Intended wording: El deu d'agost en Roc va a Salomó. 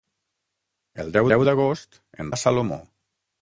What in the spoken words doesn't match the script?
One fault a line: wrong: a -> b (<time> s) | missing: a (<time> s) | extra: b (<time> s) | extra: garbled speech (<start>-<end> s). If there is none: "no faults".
extra: deu (1.3 s)
missing: Roc va (2.3 s)